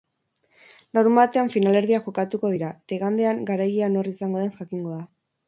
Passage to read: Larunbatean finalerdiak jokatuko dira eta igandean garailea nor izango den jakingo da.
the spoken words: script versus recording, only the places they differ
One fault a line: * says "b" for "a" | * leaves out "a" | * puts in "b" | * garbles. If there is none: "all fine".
all fine